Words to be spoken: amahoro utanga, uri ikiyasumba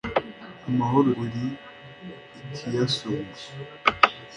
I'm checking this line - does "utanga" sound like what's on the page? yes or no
no